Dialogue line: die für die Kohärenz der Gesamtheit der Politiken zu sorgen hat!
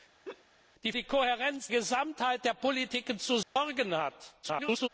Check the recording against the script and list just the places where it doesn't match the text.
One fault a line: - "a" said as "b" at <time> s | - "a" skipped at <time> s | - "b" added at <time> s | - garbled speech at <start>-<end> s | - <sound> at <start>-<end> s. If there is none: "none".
- laugh at 0.2-0.4 s
- "für" skipped at 0.9 s
- "der" skipped at 1.7 s
- dropout at 3.4-3.6 s
- garbled speech at 4.4-4.9 s